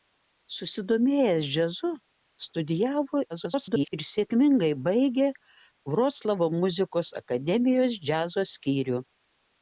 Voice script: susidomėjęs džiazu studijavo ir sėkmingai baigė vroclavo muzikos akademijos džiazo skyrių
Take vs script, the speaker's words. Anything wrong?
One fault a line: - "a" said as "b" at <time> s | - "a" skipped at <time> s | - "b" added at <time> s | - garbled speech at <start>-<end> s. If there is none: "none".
- garbled speech at 3.3-3.9 s